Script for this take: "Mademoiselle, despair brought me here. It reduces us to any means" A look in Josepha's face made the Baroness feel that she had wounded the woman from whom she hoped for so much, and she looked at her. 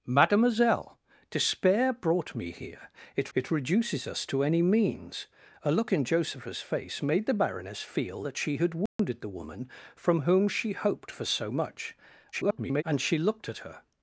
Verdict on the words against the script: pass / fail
fail